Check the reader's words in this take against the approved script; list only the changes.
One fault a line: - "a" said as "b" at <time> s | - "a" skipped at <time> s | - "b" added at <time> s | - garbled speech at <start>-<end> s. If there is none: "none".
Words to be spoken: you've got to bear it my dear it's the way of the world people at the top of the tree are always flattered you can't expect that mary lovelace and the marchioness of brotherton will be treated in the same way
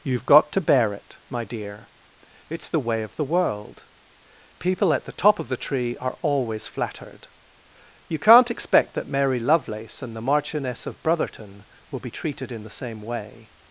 none